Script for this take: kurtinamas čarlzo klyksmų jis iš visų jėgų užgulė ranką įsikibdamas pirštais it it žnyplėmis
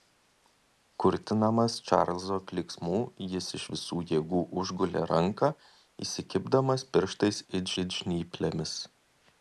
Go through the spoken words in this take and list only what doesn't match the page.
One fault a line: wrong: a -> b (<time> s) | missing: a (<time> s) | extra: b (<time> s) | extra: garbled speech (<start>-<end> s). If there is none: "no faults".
no faults